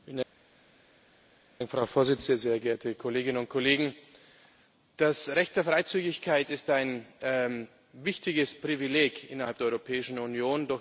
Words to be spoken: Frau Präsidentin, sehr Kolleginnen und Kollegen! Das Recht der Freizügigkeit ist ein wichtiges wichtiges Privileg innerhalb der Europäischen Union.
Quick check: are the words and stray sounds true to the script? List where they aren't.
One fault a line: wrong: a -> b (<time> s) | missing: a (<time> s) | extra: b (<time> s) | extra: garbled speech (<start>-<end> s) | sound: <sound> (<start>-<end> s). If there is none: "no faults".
extra: geehrte (2.6 s)
missing: wichtiges (8.5 s)